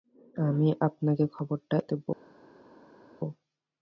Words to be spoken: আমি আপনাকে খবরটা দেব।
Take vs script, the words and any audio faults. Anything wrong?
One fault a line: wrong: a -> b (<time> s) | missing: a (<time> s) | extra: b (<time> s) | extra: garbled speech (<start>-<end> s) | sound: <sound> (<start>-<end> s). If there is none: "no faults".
no faults